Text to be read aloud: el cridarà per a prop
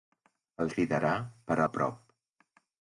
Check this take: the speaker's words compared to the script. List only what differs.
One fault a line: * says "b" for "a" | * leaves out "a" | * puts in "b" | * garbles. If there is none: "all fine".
all fine